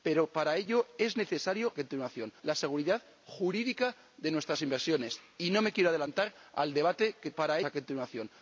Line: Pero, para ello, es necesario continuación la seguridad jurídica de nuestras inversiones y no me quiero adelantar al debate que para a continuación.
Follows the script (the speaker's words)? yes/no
yes